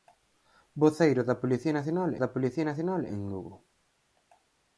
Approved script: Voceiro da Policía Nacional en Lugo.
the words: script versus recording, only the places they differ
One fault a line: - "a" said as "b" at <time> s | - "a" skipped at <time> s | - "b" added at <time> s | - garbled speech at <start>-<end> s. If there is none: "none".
- "da Policía Nacional" added at 2.2 s